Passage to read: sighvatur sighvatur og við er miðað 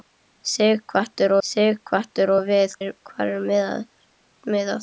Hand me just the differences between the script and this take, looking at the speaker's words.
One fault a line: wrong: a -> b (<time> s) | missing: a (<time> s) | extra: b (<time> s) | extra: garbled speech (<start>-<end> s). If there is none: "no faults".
no faults